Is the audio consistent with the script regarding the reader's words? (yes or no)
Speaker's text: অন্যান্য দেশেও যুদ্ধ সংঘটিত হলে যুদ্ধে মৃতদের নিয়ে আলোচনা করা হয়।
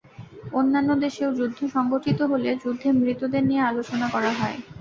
yes